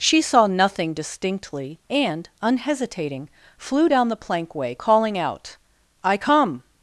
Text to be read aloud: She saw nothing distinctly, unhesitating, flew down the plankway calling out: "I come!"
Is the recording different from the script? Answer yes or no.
yes